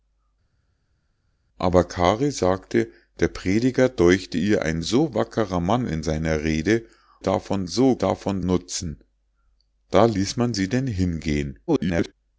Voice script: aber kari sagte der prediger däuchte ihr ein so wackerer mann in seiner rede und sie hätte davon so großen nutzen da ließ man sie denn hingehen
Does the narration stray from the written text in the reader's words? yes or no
yes